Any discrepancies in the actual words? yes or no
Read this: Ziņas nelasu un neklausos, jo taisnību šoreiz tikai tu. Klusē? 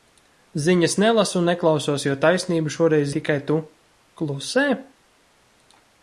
no